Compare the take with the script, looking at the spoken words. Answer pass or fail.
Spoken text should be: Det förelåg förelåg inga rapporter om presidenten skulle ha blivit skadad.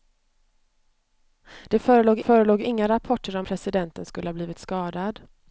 pass